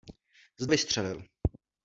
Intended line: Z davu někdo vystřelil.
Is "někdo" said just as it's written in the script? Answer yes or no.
no